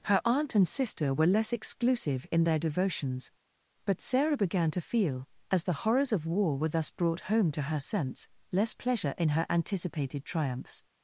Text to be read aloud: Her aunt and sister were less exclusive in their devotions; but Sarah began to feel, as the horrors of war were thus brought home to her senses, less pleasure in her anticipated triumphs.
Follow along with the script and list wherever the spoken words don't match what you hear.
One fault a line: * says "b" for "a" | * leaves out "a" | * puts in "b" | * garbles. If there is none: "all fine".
* says "sense" for "senses"